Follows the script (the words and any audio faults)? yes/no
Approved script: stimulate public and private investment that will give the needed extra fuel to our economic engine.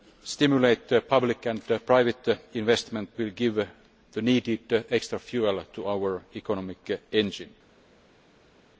no